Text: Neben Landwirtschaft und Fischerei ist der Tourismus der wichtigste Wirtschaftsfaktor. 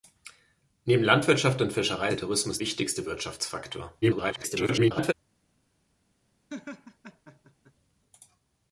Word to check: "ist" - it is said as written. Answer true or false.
false